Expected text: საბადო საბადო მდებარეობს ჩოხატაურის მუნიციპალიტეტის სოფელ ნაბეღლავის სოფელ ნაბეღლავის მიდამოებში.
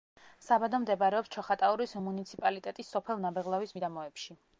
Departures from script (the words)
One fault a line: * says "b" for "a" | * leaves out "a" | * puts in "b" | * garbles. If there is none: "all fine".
* leaves out "საბადო"
* leaves out "სოფელ ნაბეღლავის"